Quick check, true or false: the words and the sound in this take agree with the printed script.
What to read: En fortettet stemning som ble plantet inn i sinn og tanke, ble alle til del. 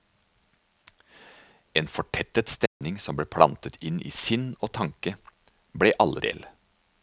false